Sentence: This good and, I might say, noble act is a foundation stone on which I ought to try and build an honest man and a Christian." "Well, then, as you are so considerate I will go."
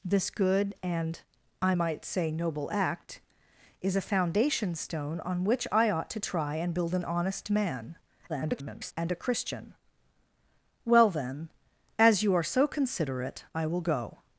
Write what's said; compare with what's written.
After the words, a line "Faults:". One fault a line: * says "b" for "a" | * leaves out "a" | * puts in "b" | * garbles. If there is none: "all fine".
This good and, I might say, noble act is a foundation stone on which I ought to try and build an honest man [garbled] and a Christian." "Well, then, as you are so considerate I will go."
Faults:
* garbles